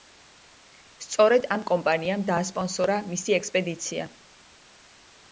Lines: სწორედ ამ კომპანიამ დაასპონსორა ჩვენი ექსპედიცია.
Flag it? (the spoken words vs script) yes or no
yes